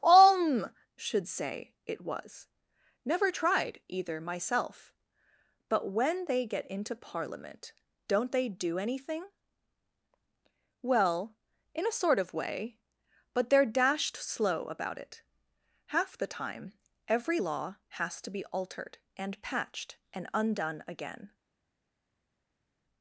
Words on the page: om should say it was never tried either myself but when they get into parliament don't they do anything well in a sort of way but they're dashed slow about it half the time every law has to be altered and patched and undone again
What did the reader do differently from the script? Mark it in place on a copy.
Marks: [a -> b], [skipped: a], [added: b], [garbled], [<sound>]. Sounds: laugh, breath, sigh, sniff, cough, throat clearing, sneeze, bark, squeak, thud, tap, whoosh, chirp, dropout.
om should say it was never tried either myself but when they get into parliament don't they do anything well in a sort of way but they're dashed slow about it half the time every law has to be altered and patched and undone again